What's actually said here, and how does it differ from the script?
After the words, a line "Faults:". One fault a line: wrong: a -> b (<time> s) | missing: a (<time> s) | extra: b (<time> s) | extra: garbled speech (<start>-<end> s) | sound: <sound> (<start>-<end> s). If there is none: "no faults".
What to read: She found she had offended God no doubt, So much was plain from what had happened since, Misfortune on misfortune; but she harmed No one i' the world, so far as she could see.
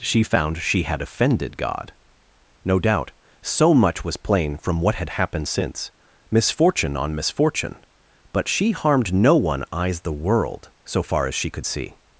She found she had offended God no doubt, So much was plain from what had happened since, Misfortune on misfortune; but she harmed No one eyes' the world, so far as she could see.
Faults:
wrong: i -> eyes (9.7 s)